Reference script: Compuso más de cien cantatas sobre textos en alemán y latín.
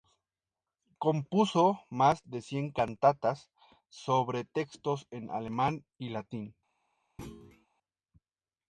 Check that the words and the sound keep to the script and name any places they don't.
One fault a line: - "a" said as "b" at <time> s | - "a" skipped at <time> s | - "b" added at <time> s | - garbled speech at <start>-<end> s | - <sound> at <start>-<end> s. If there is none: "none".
- thud at 7.2-7.7 s